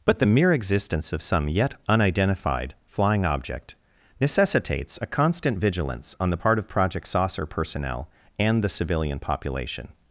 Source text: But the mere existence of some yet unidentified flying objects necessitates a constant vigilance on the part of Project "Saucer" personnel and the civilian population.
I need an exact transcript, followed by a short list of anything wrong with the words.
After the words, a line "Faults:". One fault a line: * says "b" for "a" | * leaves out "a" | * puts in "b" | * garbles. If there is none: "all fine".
But the mere existence of some yet unidentified flying object necessitates a constant vigilance on the part of Project "Saucer" personnel and the civilian population.
Faults:
* says "object" for "objects"